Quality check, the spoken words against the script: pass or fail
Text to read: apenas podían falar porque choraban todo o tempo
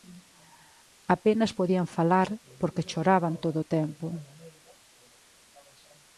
pass